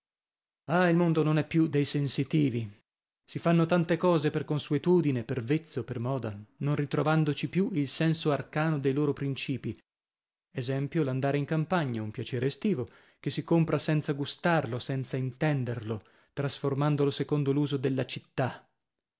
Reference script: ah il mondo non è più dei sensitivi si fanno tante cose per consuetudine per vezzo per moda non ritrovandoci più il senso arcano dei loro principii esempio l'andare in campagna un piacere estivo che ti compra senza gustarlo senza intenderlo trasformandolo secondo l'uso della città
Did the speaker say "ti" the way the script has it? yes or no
no